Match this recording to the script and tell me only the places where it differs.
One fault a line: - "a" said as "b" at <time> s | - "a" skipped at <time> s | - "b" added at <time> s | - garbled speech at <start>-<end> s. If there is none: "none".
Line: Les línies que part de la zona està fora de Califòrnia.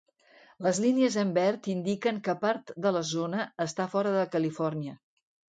- "en verd indiquen" added at 1.2 s